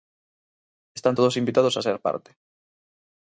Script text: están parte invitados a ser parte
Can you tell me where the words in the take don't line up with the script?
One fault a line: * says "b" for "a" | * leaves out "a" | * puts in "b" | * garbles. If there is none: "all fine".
* says "todos" for "parte"